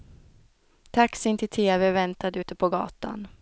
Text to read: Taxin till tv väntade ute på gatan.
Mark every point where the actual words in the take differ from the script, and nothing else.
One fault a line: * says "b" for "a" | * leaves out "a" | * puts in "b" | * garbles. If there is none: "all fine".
all fine